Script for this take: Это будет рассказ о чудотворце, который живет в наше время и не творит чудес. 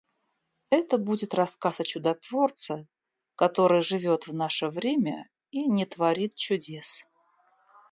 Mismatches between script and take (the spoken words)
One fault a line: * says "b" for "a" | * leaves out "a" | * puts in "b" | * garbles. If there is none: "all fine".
all fine